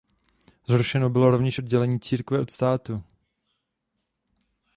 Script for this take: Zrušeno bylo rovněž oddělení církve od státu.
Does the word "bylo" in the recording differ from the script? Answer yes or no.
no